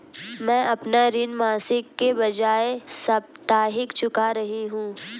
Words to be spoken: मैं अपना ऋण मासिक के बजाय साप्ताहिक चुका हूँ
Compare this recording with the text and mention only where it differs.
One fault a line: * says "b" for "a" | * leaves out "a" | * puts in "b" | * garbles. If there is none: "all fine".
* puts in "रही"